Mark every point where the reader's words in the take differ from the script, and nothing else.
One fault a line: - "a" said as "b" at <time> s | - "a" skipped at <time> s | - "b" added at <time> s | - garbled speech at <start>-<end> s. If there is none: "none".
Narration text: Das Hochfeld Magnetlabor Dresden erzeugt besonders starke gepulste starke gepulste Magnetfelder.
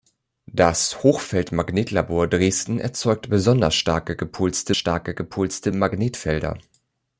none